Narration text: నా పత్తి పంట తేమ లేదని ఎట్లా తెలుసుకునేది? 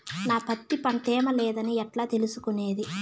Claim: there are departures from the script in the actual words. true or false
false